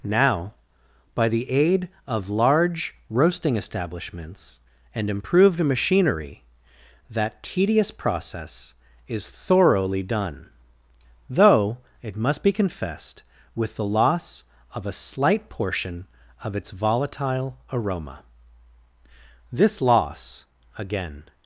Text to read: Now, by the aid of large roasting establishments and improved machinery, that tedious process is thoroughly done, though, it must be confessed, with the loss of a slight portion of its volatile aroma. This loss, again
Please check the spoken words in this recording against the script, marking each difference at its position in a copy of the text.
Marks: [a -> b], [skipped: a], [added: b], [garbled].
Now, by the aid of large roasting establishments and improved machinery, that tedious process is thoroughly done, though, it must be confessed, with the loss of a slight portion of its volatile aroma. This loss, again